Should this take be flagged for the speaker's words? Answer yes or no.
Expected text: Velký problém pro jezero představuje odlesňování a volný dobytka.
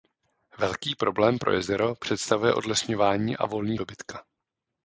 no